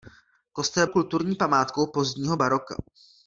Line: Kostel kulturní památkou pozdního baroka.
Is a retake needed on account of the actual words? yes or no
no